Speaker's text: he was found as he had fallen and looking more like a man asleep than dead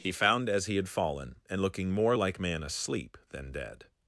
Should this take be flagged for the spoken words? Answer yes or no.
yes